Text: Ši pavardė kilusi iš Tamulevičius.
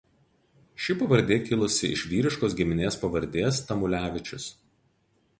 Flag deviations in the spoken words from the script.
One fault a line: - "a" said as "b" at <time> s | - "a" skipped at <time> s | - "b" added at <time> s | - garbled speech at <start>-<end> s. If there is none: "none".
- "vyriškos giminės pavardės" added at 2.1 s